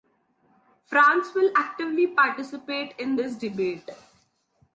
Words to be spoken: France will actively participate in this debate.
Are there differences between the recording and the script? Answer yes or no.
no